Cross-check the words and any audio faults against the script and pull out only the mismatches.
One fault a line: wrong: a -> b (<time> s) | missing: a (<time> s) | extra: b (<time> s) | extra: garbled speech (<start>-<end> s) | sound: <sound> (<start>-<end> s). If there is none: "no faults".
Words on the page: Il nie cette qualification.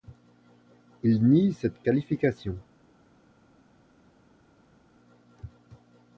no faults